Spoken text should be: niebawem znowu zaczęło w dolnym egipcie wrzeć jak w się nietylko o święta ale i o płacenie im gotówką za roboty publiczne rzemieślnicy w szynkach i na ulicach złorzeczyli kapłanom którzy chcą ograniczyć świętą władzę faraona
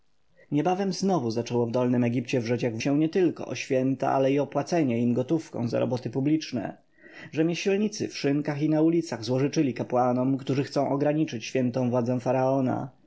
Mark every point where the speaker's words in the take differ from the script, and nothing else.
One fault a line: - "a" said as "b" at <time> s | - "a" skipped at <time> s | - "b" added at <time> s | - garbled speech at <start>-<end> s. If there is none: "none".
none